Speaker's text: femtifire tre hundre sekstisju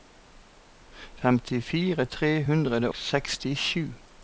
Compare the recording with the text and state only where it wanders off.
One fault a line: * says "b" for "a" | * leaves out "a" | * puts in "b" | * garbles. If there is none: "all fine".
all fine